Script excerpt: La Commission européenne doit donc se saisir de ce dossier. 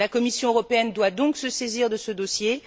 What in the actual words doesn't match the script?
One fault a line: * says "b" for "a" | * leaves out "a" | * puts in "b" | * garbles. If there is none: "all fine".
all fine